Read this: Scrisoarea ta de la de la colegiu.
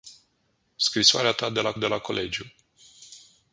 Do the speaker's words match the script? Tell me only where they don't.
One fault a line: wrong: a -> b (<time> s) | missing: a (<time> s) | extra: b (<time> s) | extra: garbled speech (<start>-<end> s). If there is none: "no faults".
no faults